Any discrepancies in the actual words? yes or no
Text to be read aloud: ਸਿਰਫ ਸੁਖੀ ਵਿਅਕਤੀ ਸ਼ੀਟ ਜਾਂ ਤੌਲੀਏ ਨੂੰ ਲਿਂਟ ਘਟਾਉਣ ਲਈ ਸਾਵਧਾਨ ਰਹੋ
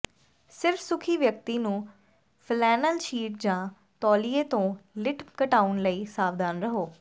yes